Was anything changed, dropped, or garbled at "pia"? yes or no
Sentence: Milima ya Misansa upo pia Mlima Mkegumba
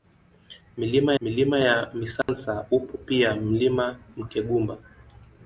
no